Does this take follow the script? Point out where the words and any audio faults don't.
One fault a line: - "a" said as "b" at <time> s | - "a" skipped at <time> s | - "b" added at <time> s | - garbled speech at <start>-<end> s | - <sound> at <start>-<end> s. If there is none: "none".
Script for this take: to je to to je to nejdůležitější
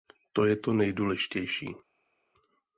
- "to je to" skipped at 0.7 s